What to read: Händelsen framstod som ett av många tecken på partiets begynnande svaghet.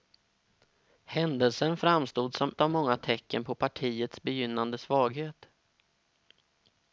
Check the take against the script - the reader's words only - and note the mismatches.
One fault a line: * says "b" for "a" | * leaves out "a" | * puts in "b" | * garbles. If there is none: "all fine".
* leaves out "ett"